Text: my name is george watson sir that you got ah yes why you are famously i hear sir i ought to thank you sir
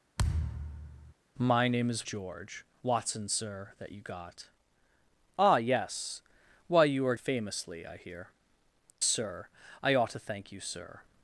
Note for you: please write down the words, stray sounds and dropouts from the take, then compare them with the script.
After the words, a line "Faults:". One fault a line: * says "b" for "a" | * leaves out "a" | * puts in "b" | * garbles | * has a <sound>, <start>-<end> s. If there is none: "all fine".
my name is george watson sir that you got ah yes why you are famously i hear sir i ought to thank you sir
Faults:
* has a thud, 0.2-1.1 s